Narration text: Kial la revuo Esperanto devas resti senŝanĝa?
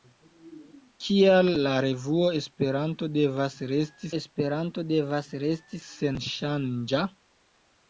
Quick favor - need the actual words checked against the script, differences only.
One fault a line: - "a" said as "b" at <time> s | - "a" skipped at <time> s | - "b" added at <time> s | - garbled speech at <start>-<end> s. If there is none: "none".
- "Esperanto devas resti" added at 4.2 s